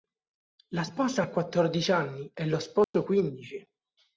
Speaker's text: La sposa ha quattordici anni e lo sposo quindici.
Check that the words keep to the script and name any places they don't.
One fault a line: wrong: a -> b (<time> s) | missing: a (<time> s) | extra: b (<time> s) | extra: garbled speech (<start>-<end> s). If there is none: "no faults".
no faults